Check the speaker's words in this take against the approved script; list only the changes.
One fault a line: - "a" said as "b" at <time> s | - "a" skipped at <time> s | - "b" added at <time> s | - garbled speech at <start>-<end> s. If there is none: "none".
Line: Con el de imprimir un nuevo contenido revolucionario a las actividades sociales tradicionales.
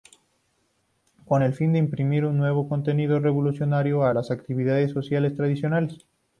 - "fin" added at 1.5 s